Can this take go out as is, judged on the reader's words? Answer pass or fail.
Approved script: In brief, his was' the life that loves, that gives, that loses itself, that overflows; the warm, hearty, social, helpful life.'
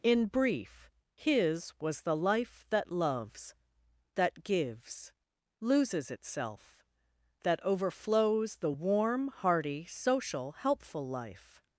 fail